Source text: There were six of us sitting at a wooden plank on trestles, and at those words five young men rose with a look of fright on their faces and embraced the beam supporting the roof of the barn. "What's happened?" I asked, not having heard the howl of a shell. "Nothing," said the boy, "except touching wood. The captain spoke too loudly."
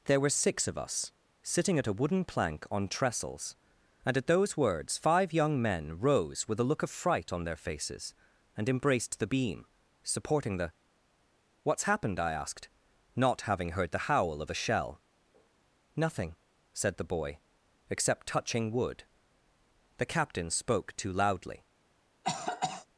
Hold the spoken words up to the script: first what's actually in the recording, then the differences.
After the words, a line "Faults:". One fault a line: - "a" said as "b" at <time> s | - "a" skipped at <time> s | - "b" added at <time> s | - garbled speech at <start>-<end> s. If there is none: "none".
There were six of us sitting at a wooden plank on trestles, and at those words five young men rose with a look of fright on their faces and embraced the beam supporting the. "What's happened?" I asked, not having heard the howl of a shell. "Nothing," said the boy, "except touching wood. The captain spoke too loudly."
Faults:
- "roof of the barn" skipped at 10.7 s